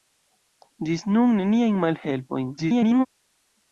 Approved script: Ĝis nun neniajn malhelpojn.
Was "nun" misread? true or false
false